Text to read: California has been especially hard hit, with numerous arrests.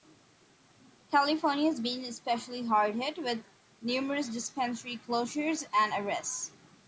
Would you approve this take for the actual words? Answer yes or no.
no